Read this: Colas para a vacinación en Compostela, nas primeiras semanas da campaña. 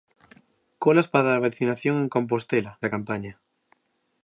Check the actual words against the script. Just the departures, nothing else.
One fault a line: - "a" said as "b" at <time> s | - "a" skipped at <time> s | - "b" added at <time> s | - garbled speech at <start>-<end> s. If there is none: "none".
- "nas primeiras semanas" skipped at 2.7 s